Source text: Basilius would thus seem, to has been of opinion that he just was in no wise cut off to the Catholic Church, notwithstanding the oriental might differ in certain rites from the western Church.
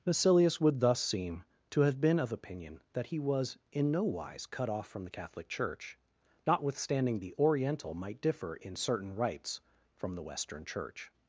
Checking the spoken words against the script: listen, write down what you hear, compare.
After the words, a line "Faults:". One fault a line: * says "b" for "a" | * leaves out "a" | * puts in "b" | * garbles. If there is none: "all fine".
Basilius would thus seem, to have been of opinion that he was in no wise cut off from the Catholic Church, notwithstanding the oriental might differ in certain rites from the western Church.
Faults:
* says "have" for "has"
* leaves out "just"
* says "from" for "to"